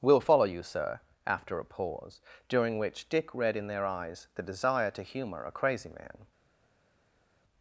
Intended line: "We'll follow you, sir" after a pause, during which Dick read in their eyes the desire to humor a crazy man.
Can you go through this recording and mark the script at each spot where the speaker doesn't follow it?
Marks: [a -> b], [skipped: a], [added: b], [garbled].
"We'll follow you, sir" after a pause, during which Dick read in their eyes the desire to humor a crazy man.